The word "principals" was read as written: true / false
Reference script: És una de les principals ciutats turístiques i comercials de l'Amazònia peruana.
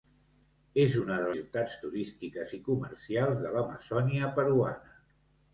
false